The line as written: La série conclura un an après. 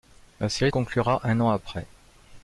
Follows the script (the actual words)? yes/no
yes